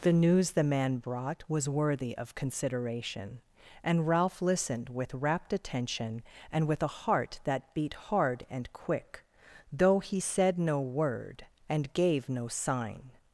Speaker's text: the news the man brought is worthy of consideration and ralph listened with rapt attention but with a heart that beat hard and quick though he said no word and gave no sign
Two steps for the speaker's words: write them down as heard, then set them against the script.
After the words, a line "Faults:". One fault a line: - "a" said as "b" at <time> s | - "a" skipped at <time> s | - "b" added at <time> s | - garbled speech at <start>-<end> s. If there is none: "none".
the news the man brought was worthy of consideration and ralph listened with rapt attention and with a heart that beat hard and quick though he said no word and gave no sign
Faults:
- "is" said as "was" at 1.5 s
- "but" said as "and" at 6.5 s